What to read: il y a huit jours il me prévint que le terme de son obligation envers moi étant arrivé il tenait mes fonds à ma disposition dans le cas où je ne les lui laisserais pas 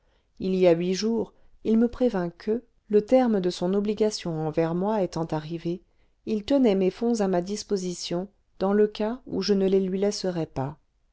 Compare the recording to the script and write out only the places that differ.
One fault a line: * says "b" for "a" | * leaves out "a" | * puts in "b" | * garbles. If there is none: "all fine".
all fine